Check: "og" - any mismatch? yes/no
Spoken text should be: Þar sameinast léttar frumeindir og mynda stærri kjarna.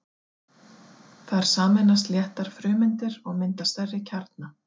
no